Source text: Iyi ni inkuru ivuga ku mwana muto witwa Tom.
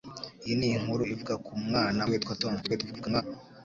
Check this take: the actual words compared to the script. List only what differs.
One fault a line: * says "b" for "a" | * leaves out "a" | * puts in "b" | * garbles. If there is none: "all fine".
* leaves out "muto"
* garbles